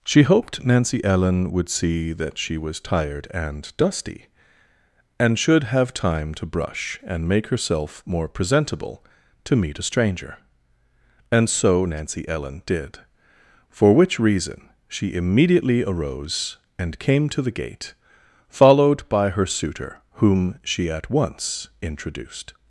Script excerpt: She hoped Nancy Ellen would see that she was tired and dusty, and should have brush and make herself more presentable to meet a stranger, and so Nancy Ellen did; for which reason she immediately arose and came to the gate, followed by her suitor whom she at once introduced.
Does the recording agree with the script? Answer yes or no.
no